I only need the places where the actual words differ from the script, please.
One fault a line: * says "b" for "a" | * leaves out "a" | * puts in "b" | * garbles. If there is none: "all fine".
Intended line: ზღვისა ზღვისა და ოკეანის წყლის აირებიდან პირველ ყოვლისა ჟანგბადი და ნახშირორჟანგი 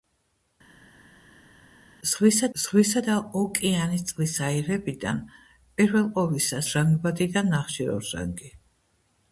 all fine